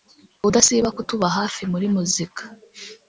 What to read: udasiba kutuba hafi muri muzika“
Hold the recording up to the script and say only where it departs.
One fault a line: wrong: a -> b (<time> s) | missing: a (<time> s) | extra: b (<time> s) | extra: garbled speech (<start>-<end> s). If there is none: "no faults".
no faults